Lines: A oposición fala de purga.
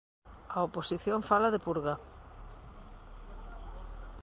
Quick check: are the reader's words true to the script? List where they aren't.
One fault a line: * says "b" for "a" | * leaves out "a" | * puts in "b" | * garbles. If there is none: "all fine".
all fine